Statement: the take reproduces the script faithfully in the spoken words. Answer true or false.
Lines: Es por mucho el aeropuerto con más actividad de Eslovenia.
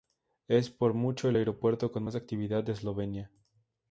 true